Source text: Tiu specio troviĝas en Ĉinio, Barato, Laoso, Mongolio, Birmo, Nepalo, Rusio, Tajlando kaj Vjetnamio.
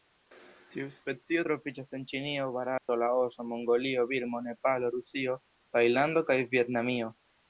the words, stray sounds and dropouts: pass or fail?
fail